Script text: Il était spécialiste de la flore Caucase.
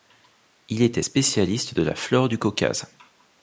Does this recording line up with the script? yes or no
no